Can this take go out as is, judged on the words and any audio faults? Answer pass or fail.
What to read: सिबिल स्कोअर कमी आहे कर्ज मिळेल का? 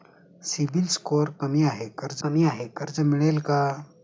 fail